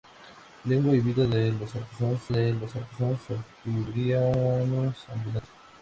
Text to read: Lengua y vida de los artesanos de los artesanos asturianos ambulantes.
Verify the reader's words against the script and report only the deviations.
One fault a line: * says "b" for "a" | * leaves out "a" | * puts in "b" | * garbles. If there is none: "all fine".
all fine